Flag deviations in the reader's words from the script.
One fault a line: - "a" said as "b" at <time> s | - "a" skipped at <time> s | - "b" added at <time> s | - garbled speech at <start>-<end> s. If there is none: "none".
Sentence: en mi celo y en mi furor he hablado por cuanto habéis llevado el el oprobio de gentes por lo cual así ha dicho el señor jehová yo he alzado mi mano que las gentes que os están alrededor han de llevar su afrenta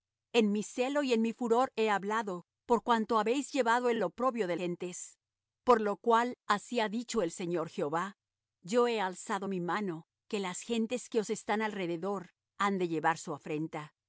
none